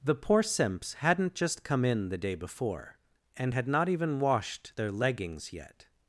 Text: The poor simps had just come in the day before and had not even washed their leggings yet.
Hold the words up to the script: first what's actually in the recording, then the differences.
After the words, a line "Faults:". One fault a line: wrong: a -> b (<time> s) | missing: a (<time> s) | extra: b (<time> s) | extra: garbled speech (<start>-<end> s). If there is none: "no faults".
The poor simps hadn't just come in the day before and had not even washed their leggings yet.
Faults:
wrong: had -> hadn't (0.9 s)